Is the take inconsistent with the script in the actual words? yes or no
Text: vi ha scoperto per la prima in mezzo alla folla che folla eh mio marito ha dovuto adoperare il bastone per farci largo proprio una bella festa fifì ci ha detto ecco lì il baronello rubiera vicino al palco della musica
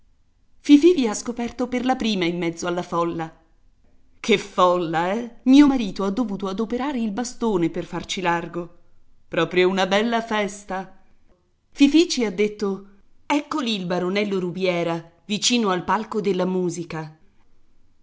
no